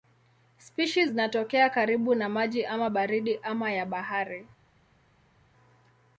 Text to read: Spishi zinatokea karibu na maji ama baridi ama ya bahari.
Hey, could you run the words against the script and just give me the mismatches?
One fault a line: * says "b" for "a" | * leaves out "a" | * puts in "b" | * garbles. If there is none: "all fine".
all fine